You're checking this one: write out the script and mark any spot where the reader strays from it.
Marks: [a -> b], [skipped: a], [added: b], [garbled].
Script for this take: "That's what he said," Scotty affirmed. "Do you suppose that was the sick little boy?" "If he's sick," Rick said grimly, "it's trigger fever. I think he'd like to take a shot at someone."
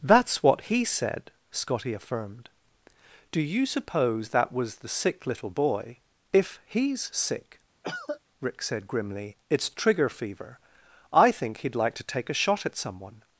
"That's what he said," Scotty affirmed. "Do you suppose that was the sick little boy?" "If he's sick," Rick said grimly, "it's trigger fever. I think he'd like to take a shot at someone."